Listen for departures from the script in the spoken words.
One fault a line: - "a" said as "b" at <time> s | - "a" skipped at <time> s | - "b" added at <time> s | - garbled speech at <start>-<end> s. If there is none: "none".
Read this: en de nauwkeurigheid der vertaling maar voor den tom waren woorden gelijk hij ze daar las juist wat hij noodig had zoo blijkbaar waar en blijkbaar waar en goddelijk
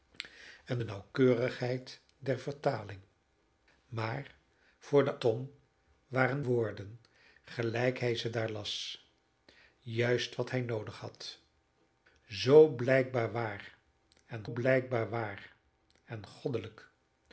none